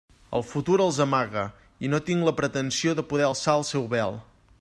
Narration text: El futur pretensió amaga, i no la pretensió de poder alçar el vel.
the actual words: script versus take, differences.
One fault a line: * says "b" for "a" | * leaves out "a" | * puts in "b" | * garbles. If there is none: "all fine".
* says "els" for "pretensió"
* puts in "tinc"
* puts in "seu"